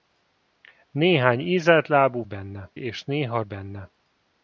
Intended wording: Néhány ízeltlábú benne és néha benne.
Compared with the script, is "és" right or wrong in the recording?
right